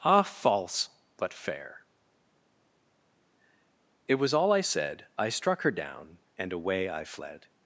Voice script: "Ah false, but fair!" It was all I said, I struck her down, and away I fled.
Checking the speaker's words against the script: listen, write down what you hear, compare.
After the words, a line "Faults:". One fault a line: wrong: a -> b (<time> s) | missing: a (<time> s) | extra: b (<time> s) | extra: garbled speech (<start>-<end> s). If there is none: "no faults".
"Ah false, but fair!" It was all I said, I struck her down, and away I fled.
Faults:
no faults